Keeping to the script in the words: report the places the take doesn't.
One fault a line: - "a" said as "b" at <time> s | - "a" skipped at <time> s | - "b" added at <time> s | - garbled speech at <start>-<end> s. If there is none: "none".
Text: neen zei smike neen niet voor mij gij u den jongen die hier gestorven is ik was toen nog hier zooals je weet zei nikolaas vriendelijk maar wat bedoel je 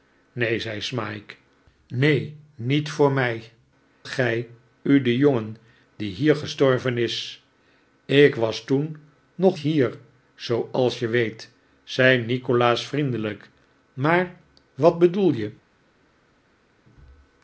none